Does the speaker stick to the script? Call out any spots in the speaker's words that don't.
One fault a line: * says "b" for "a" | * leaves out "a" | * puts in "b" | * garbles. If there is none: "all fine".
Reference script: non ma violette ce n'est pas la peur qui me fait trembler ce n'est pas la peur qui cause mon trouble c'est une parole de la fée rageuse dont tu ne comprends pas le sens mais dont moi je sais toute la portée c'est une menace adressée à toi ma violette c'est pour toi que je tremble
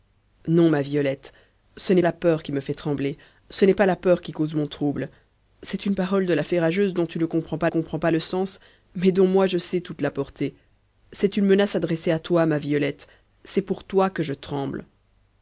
* leaves out "pas"
* puts in "comprends pas"